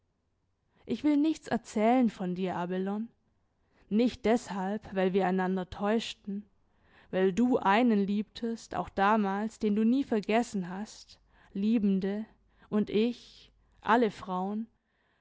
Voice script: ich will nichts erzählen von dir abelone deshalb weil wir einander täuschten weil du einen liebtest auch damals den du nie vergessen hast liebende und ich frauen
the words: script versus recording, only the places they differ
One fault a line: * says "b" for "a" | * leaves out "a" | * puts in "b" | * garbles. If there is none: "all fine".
* puts in "nicht"
* puts in "alle"